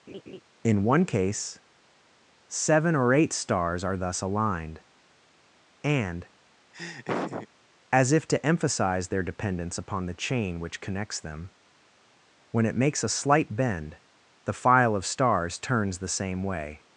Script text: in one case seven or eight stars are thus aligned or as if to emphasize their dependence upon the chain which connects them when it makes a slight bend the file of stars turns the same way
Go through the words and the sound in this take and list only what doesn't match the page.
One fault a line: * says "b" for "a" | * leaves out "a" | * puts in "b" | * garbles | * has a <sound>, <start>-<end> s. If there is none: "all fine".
* has a laugh, 0.1-0.4 s
* says "and" for "or"
* has a laugh, 6.7-7.5 s